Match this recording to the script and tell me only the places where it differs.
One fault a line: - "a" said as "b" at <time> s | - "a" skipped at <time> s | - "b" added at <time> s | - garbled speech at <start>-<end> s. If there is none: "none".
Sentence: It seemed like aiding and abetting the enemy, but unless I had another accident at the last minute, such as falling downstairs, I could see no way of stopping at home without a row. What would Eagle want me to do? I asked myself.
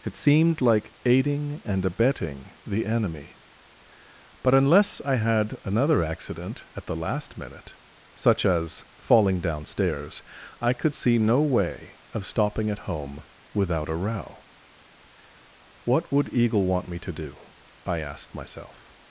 none